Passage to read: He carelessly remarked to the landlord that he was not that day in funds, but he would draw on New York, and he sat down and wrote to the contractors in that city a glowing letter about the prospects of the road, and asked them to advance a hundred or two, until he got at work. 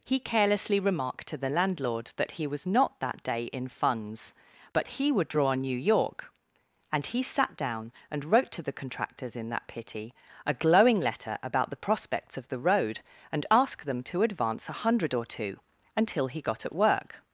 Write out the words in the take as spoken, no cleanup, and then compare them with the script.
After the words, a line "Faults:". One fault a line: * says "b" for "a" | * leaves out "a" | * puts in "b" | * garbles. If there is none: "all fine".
He carelessly remarked to the landlord that he was not that day in funds, but he would draw on New York, and he sat down and wrote to the contractors in that pity a glowing letter about the prospects of the road, and asked them to advance a hundred or two, until he got at work.
Faults:
* says "pity" for "city"